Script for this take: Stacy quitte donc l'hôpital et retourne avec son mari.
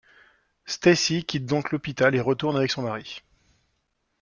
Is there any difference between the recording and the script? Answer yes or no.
no